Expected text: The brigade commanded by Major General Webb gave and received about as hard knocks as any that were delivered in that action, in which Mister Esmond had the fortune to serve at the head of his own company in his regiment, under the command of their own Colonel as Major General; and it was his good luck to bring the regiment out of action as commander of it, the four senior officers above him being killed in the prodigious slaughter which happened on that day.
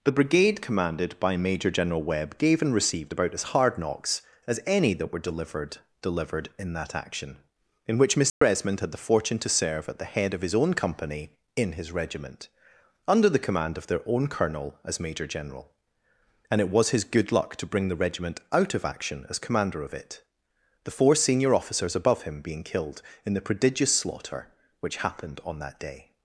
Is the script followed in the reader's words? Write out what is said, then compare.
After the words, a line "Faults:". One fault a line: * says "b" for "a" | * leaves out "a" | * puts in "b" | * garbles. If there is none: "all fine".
The brigade commanded by Major General Webb gave and received about as hard knocks as any that were delivered delivered in that action, in which Mister Esmond had the fortune to serve at the head of his own company in his regiment, under the command of their own Colonel as Major General; and it was his good luck to bring the regiment out of action as commander of it, the four senior officers above him being killed in the prodigious slaughter which happened on that day.
Faults:
* puts in "delivered"